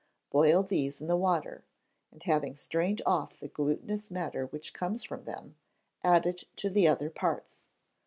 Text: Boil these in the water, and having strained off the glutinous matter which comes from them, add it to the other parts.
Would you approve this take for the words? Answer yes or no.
yes